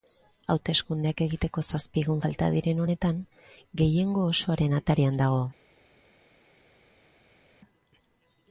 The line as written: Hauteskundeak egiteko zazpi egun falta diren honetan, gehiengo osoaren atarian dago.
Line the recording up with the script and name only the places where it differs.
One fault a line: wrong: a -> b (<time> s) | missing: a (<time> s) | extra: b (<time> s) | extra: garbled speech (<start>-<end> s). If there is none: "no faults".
no faults